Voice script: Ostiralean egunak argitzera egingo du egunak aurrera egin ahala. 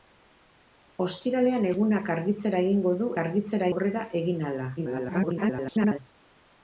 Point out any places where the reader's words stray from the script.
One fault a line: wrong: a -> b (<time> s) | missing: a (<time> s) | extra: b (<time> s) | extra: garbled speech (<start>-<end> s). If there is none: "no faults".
wrong: egunak -> argitzera (3.2 s)
extra: garbled speech (4.8-6.0 s)